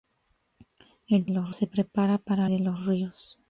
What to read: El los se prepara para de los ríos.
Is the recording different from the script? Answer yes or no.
no